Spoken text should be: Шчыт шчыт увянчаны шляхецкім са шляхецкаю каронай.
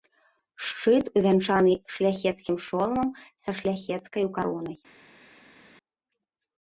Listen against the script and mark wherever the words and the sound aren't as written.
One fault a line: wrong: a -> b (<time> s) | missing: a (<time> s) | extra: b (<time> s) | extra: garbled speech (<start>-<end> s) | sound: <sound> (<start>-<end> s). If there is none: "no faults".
missing: шчыт (1.1 s)
extra: шоламам (2.7 s)